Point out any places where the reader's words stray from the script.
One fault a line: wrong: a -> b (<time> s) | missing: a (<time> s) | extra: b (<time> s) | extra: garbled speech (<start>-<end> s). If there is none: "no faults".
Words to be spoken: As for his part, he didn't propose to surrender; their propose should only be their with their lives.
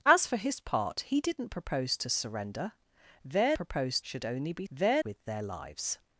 no faults